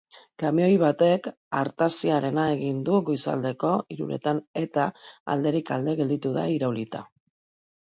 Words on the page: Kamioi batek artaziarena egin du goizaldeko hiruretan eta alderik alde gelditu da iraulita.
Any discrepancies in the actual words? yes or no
no